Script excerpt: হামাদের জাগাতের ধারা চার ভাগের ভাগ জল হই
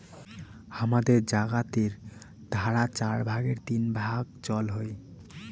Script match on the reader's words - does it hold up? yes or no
no